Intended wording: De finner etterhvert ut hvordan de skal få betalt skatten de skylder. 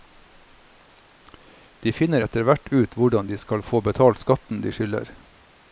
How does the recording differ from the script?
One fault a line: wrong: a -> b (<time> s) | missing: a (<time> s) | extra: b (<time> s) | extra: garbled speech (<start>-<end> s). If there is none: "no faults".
no faults